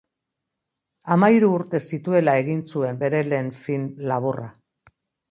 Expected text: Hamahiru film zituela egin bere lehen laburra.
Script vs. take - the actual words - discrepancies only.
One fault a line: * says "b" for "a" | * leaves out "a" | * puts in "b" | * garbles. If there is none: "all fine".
* says "urte" for "film"
* puts in "zuen"
* puts in "film"